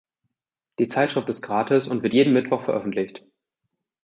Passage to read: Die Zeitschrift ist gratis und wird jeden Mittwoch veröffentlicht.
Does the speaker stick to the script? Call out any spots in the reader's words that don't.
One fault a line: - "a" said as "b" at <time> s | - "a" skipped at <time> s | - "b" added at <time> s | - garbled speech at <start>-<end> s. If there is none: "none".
none